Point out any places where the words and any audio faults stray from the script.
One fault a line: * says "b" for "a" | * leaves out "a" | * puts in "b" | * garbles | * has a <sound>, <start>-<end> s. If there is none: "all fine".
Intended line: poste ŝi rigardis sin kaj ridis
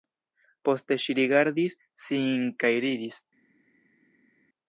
all fine